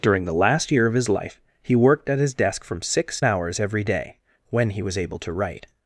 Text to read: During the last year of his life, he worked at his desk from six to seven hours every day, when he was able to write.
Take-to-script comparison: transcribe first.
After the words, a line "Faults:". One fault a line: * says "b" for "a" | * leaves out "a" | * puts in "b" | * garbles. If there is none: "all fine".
During the last year of his life, he worked at his desk from six hours every day, when he was able to write.
Faults:
* leaves out "to seven"